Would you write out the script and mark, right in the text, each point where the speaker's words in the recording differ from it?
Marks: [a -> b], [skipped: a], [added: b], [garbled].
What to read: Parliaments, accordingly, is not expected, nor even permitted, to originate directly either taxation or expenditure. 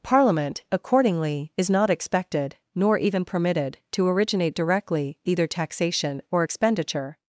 [Parliaments, -> Parliament] accordingly, is not expected, nor even permitted, to originate directly either taxation or expenditure.